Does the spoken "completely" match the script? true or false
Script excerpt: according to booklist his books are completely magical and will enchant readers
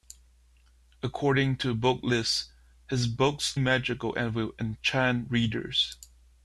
false